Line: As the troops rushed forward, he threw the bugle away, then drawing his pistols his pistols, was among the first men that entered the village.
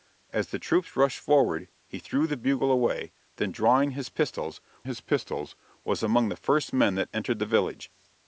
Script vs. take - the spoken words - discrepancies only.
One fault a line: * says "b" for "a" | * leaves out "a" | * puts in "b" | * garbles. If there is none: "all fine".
all fine